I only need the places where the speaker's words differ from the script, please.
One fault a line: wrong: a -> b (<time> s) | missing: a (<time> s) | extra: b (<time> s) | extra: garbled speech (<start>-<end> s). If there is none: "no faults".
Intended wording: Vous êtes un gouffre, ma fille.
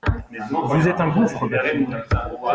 no faults